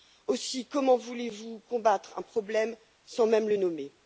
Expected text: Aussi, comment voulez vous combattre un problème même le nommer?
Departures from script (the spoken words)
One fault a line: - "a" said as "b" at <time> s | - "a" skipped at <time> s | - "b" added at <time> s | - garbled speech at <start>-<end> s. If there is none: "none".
- "sans" added at 3.0 s